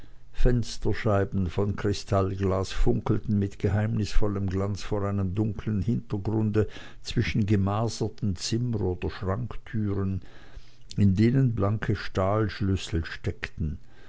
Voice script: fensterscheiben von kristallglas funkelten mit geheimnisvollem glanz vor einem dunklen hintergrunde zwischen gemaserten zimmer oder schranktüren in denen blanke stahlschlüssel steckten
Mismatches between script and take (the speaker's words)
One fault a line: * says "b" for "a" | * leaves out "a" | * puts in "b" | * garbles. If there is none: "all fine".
all fine